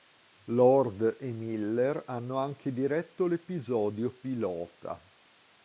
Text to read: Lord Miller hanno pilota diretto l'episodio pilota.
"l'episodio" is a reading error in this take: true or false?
false